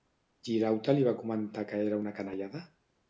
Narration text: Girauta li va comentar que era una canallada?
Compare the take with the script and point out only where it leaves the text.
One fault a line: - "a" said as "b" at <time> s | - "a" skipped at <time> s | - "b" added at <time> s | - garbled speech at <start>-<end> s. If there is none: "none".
none